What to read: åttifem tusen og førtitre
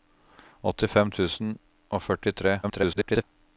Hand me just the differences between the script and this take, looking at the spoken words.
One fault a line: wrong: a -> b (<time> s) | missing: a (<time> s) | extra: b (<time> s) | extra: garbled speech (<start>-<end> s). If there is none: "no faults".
extra: garbled speech (2.6-3.2 s)